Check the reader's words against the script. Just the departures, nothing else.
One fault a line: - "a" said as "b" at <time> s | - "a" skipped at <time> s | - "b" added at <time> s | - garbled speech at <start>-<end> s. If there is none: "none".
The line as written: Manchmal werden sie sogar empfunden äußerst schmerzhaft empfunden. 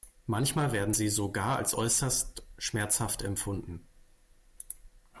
- "empfunden" said as "als" at 1.6 s